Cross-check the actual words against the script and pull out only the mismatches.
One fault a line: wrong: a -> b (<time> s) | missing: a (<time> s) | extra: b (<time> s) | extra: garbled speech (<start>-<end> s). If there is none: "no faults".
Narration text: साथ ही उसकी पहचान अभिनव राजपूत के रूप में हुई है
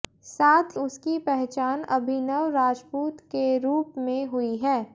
missing: ही (0.7 s)